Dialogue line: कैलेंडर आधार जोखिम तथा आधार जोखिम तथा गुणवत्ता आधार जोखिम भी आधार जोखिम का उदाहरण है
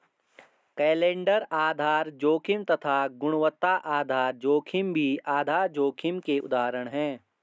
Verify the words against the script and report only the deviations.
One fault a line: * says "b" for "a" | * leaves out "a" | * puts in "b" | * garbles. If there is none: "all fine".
* leaves out "आधार जोखिम तथा"
* says "के" for "का"